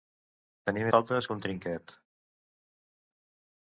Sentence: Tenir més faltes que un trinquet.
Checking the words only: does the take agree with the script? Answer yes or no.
no